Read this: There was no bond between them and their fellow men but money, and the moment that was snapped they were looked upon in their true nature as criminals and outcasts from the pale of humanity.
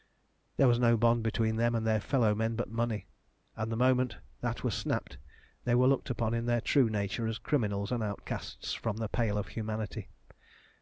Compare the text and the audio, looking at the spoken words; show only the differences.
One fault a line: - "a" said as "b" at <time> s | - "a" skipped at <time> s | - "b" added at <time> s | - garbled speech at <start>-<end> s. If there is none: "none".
none